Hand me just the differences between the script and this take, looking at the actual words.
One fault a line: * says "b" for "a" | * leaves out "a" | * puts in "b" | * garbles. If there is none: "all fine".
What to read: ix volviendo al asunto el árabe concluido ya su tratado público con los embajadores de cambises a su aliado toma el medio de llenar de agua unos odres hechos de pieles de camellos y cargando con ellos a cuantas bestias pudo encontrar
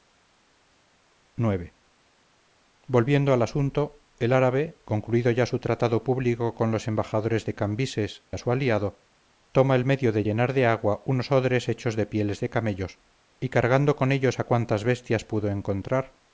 all fine